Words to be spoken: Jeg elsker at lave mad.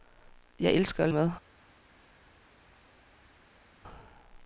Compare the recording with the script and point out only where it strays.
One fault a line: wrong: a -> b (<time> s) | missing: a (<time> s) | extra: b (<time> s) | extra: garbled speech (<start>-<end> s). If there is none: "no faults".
missing: lave (1.1 s)